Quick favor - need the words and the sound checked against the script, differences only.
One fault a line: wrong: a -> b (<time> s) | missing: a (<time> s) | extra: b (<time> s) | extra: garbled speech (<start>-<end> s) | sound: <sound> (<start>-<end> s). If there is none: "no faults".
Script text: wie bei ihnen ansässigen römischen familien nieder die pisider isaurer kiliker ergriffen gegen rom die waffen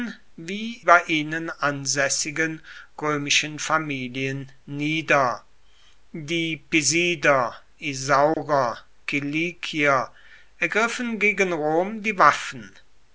sound: dropout (8.3-8.4 s)